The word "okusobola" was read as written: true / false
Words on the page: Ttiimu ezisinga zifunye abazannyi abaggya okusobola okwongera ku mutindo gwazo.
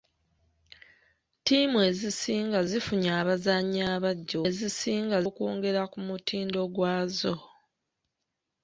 false